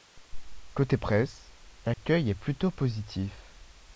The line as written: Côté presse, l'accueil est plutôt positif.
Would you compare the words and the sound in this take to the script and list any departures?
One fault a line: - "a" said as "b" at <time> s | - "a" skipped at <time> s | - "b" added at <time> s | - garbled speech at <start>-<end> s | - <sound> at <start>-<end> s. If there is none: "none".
- dropout at 1.9-2.0 s